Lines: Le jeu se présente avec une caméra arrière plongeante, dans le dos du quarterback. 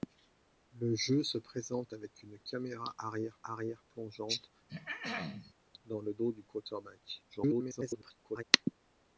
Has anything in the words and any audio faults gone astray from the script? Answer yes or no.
yes